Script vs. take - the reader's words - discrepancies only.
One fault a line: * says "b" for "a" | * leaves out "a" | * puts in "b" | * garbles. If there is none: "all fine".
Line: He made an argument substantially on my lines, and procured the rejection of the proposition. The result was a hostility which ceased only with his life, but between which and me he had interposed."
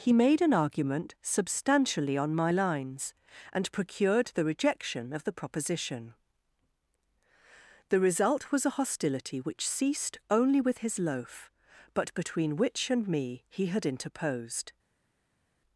* says "loaf" for "life"